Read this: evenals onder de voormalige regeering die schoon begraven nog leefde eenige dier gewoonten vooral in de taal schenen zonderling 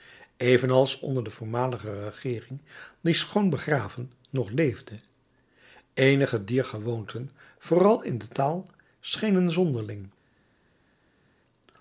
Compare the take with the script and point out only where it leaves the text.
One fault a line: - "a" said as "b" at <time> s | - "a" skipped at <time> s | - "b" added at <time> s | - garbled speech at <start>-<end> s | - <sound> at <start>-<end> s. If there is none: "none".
none